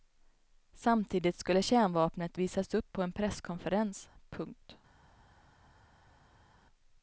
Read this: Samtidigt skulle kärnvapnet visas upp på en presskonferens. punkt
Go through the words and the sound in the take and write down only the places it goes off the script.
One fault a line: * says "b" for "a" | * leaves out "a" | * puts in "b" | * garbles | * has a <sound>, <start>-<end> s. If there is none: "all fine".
all fine